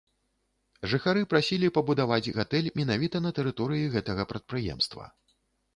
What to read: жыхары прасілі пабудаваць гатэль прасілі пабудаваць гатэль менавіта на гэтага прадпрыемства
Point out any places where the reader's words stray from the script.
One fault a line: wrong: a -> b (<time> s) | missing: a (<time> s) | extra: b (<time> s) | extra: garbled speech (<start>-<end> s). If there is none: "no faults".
missing: прасілі пабудаваць гатэль (2.7 s)
extra: тэрыторыі (3.4 s)